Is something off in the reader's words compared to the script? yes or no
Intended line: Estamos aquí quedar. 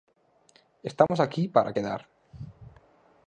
yes